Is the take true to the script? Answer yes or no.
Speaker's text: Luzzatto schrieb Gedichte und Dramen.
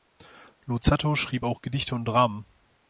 no